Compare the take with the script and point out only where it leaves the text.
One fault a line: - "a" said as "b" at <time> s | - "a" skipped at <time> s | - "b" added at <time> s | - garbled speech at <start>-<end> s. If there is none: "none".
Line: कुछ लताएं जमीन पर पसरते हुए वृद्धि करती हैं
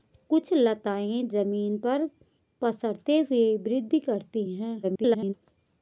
- garbled speech at 4.8-5.3 s